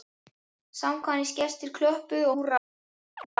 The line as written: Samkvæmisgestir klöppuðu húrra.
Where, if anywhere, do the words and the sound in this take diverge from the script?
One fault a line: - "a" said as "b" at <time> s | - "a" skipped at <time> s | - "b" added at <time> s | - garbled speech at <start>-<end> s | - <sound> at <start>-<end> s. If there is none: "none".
- chirp at 3.2-3.3 s